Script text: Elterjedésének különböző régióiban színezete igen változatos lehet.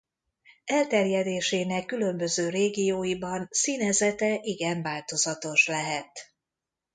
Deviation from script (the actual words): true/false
false